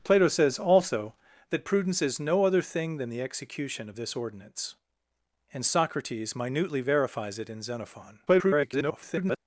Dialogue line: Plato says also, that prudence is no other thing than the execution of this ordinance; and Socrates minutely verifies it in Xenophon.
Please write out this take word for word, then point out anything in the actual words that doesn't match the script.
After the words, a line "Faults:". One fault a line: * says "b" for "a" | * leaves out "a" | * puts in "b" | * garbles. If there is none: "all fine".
Plato says also, that prudence is no other thing than the execution of this ordinance; and Socrates minutely verifies it in Xenophon. [garbled]
Faults:
* garbles